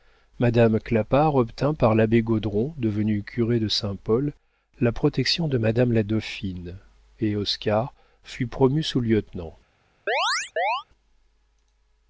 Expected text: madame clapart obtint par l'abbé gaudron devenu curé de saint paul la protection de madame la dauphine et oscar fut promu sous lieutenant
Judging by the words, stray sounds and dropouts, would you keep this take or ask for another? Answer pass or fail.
fail